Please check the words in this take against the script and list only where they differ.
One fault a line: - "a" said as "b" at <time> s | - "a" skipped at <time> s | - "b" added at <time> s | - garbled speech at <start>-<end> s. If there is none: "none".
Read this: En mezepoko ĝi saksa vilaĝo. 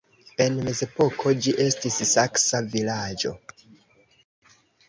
- "estis" added at 1.7 s